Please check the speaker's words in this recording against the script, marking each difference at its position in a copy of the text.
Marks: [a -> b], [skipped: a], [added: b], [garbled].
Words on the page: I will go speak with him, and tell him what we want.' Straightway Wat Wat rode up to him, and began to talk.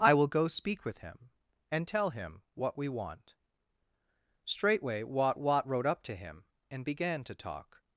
I will go speak with him, and tell him what we want.' Straightway Wat Wat rode up to him, and began to talk.